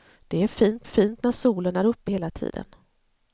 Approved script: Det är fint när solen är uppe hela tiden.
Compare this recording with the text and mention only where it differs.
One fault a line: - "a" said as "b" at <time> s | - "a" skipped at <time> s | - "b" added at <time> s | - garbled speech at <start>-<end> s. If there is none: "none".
- "fint" added at 0.8 s